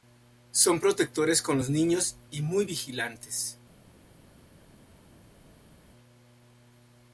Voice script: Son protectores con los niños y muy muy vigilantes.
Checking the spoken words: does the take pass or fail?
fail